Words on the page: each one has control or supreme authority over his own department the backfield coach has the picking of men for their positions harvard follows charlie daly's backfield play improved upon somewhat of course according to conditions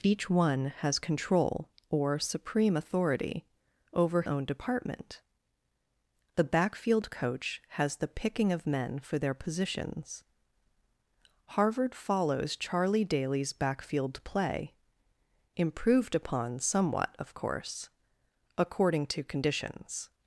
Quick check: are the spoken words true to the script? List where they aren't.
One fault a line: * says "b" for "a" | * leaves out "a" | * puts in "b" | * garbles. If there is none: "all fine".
* leaves out "his"